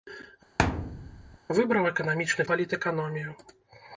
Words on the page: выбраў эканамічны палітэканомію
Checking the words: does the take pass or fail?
pass